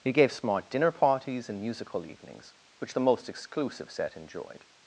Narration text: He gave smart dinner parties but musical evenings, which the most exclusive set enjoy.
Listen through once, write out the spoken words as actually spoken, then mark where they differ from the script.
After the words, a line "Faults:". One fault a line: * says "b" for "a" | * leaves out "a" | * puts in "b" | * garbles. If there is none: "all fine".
He gave smart dinner parties and musical evenings, which the most exclusive set enjoyed.
Faults:
* says "and" for "but"
* says "enjoyed" for "enjoy"